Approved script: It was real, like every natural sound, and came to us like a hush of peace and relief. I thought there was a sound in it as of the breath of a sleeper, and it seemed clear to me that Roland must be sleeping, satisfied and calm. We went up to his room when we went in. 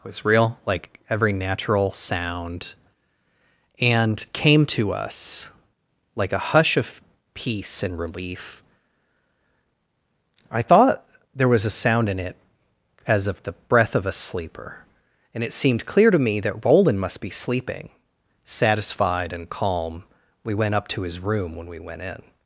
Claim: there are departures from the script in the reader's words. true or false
true